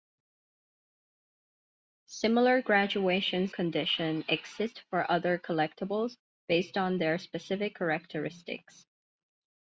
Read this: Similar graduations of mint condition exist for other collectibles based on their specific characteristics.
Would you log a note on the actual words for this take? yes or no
yes